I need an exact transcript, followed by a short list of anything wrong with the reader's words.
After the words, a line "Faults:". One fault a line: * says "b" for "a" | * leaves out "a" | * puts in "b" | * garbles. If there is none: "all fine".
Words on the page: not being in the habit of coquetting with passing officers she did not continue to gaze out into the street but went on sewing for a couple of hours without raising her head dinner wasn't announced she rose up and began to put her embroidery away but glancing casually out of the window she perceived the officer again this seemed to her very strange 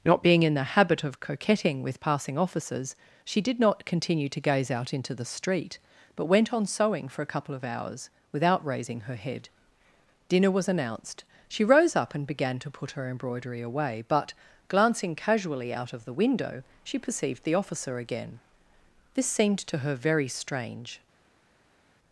not being in the habit of coquetting with passing officers she did not continue to gaze out into the street but went on sewing for a couple of hours without raising her head dinner was announced she rose up and began to put her embroidery away but glancing casually out of the window she perceived the officer again this seemed to her very strange
Faults:
* says "was" for "wasn't"